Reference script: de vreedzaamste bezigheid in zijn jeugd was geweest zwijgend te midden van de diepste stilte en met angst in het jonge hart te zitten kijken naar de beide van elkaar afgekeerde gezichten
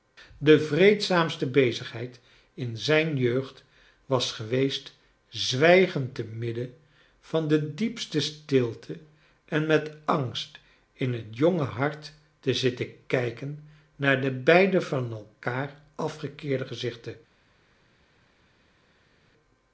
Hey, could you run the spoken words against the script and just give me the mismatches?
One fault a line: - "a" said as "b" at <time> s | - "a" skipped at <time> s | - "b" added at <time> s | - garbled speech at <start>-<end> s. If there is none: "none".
none